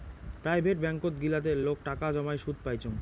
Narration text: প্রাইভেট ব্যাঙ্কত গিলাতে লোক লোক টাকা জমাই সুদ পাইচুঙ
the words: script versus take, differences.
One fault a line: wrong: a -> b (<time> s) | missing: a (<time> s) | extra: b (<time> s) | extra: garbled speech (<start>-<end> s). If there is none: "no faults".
missing: লোক (1.8 s)